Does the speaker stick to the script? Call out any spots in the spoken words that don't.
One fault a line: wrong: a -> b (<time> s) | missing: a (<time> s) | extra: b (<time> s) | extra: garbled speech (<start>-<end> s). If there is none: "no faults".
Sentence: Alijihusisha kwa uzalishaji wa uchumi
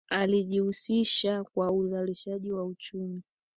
no faults